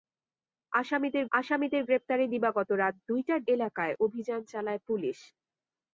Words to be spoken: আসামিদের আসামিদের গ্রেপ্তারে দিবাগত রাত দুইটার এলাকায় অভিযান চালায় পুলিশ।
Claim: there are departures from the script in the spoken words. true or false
false